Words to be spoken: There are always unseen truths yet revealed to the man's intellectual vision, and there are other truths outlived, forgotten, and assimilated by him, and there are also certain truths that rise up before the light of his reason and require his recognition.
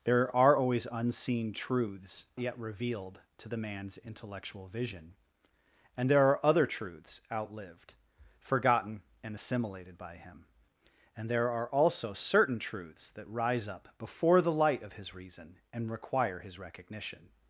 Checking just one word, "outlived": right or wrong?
right